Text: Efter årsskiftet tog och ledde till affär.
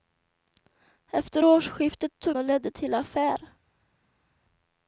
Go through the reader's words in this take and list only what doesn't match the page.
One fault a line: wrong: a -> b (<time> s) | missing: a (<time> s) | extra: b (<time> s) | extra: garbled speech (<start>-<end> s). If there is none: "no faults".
no faults